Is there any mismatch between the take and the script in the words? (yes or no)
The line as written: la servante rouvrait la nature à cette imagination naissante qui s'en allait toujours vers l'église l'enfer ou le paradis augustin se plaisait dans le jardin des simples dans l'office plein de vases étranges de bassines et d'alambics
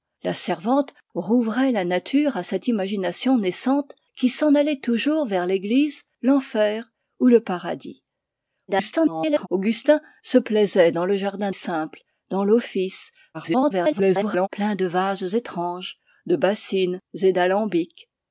yes